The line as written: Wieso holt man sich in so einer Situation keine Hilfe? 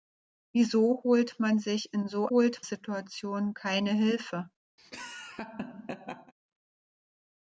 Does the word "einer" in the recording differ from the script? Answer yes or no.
yes